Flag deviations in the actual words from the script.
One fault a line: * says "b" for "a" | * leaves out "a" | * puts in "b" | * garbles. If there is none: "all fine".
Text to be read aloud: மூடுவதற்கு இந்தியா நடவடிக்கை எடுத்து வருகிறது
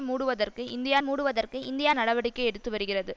* puts in "மூடுவதற்கு இந்தியா"